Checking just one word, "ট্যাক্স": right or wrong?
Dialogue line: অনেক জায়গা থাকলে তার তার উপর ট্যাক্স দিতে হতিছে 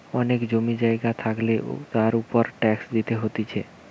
right